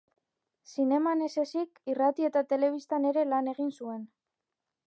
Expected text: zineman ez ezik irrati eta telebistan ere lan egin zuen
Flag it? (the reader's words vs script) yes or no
no